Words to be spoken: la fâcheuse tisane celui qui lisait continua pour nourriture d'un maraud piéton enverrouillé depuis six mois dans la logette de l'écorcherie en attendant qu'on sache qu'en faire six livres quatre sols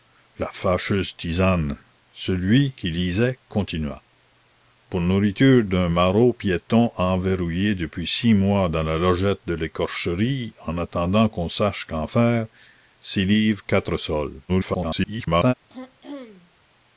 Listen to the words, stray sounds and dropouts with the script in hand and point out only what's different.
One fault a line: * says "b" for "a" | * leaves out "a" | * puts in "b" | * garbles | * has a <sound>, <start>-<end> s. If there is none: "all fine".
* garbles
* has a throat clearing, 15.7-16.5 s